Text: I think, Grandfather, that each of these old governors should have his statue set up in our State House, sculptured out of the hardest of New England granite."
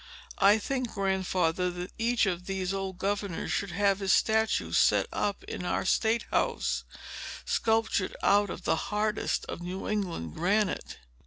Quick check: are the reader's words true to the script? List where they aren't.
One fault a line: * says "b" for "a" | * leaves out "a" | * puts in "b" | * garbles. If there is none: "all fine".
all fine